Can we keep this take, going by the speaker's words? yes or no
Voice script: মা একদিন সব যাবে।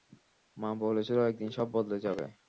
no